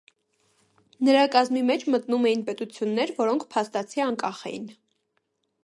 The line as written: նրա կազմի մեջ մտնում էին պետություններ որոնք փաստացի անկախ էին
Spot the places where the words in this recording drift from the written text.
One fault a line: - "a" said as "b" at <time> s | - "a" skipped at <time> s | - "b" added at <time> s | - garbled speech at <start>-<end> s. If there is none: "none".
none